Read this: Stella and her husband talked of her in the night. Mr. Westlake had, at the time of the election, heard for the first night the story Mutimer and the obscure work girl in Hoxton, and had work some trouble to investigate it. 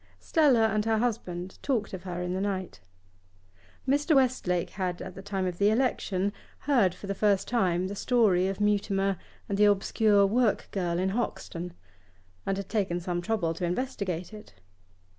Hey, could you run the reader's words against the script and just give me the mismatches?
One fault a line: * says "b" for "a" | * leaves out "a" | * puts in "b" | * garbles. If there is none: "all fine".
* says "time" for "night"
* puts in "of"
* says "taken" for "work"